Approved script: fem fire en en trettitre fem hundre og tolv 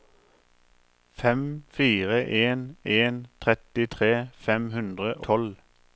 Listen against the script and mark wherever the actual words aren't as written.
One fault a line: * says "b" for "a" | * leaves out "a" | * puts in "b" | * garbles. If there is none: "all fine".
* leaves out "og"